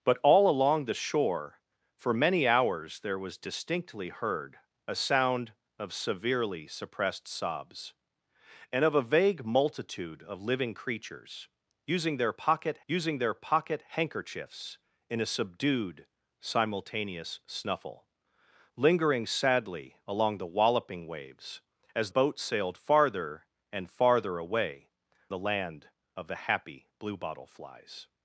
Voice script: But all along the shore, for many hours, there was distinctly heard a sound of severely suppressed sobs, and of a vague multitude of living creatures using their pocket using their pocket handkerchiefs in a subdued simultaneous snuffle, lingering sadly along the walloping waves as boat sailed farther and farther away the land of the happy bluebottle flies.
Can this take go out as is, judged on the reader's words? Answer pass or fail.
pass